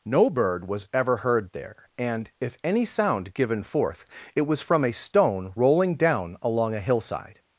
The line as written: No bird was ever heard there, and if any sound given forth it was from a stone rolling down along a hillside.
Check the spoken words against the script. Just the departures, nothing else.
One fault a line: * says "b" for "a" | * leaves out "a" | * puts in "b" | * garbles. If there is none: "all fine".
all fine